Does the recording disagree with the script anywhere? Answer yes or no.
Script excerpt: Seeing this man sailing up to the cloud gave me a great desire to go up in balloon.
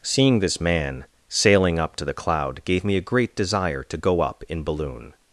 no